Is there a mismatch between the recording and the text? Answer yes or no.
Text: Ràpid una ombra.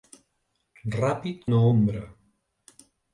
no